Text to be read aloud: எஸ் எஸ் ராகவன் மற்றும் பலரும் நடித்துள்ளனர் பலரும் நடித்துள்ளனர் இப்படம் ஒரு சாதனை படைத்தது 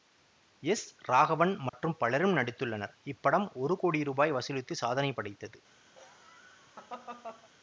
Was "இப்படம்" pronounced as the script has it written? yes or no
no